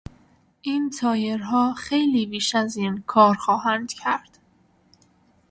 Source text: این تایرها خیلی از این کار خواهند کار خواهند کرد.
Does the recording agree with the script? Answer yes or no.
no